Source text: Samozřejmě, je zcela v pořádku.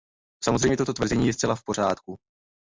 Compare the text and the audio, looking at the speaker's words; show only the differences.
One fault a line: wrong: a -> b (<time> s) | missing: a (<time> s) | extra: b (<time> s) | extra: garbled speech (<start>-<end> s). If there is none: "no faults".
extra: toto tvrzení (0.8 s)